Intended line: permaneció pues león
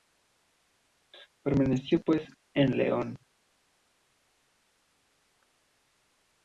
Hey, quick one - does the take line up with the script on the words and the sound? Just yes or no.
no